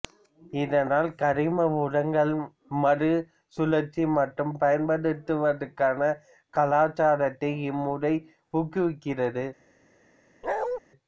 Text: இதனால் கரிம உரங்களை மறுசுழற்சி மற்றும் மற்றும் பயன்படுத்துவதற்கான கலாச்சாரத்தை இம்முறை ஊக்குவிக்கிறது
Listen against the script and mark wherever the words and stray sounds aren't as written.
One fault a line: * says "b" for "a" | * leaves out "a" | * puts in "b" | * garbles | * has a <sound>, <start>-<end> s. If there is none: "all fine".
* leaves out "மற்றும்"
* has a bark, 10.4-10.8 s